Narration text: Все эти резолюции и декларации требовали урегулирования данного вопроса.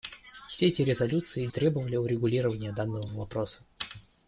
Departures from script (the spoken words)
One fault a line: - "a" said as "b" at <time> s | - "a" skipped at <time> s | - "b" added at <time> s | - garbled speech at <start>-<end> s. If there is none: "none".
- "декларации" skipped at 1.5 s